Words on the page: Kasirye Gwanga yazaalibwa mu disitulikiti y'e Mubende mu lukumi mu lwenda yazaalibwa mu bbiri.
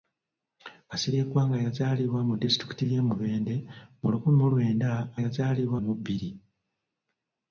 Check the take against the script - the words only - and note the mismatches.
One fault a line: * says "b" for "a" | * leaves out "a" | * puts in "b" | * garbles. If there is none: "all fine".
all fine